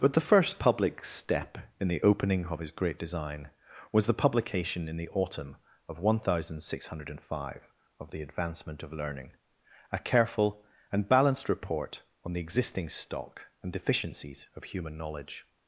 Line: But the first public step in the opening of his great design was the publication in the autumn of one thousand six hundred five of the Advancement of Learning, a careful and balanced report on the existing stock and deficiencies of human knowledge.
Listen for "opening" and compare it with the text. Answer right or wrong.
right